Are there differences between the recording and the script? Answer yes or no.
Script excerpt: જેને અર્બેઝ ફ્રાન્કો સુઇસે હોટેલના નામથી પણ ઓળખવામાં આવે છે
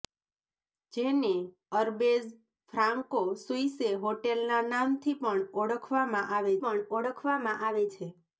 yes